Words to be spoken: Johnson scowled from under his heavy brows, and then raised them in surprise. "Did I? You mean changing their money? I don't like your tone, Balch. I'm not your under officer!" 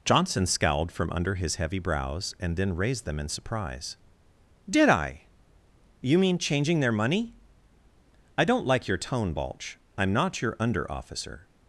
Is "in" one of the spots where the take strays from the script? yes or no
no